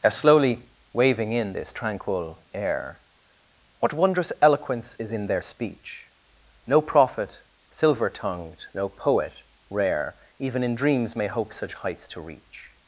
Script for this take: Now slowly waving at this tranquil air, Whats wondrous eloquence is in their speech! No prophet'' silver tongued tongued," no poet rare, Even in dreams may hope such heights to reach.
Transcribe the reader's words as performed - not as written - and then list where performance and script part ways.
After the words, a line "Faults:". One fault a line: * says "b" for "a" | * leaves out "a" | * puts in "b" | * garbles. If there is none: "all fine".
Now slowly waving in this tranquil air, What wondrous eloquence is in their speech! No prophet'' silver tongued," no poet rare, Even in dreams may hope such heights to reach.
Faults:
* says "in" for "at"
* says "What" for "Whats"
* leaves out "tongued"